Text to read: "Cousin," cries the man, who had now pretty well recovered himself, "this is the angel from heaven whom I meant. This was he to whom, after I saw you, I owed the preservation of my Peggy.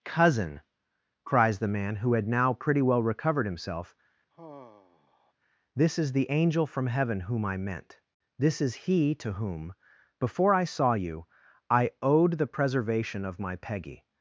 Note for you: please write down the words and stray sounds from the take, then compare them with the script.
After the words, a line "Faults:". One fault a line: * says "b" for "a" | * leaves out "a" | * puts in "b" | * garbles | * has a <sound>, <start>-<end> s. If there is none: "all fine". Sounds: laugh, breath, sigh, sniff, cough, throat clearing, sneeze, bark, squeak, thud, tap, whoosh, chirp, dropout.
"Cousin," cries the man, who had now pretty well recovered himself, "this is the angel from heaven whom I meant. This is he to whom, before I saw you, I owed the preservation of my Peggy.
Faults:
* has a sigh, 4.3-5.3 s
* says "is" for "was"
* says "before" for "after"